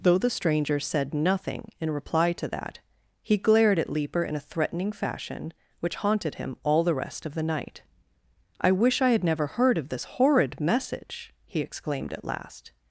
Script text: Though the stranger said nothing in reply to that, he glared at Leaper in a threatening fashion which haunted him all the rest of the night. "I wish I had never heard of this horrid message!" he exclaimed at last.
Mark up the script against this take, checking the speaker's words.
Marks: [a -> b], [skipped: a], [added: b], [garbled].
Though the stranger said nothing in reply to that, he glared at Leaper in a threatening fashion which haunted him all the rest of the night. "I wish I had never heard of this horrid message!" he exclaimed at last.